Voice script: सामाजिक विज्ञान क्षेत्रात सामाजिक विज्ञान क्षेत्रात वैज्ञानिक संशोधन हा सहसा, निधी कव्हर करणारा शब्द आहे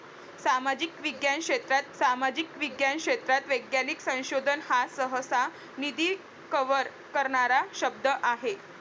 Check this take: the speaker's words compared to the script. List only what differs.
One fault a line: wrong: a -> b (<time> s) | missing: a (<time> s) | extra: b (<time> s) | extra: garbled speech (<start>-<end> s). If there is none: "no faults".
no faults